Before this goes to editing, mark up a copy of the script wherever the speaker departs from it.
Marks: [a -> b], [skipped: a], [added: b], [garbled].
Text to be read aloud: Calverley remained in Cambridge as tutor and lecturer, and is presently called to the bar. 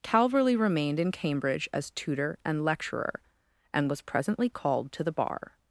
Calverley remained in Cambridge as tutor and lecturer, and [is -> was] presently called to the bar.